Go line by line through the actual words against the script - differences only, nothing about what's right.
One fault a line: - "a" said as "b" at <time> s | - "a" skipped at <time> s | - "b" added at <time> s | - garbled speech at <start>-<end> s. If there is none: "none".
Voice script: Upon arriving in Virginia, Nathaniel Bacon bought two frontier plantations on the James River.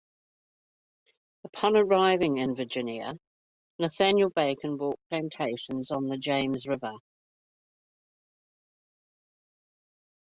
- "two frontier" skipped at 5.0 s